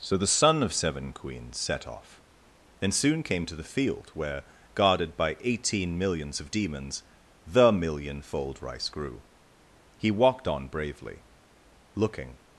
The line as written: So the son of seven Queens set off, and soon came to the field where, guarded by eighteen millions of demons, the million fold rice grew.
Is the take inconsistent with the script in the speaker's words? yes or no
yes